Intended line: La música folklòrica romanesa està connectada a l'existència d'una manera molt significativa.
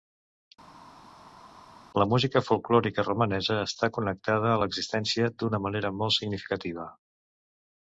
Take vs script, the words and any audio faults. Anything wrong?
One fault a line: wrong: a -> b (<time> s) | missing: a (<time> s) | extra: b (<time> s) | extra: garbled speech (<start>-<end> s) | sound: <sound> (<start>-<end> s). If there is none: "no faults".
no faults